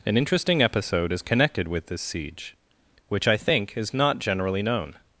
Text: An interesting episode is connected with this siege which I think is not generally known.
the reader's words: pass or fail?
pass